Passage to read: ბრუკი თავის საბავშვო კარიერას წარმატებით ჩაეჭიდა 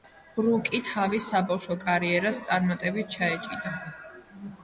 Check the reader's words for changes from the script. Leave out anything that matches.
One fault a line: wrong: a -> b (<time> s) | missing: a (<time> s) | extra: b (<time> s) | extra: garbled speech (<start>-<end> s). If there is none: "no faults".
no faults